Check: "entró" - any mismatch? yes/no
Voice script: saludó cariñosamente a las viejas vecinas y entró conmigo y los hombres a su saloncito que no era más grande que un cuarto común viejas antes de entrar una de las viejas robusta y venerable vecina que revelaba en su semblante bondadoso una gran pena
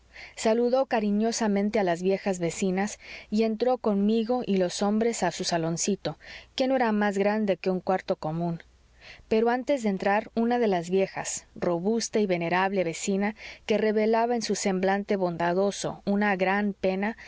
no